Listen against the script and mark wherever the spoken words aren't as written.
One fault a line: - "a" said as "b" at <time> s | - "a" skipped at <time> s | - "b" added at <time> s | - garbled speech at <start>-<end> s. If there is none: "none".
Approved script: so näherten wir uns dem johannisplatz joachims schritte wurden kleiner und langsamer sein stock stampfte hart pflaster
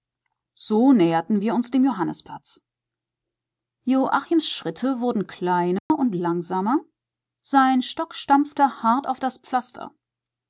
- "auf das" added at 9.1 s